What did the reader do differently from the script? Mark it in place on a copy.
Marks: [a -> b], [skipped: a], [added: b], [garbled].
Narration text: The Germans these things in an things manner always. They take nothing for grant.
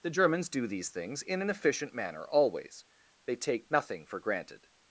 The Germans [added: do] these things in an [things -> efficient] manner always. They take nothing for [grant. -> granted]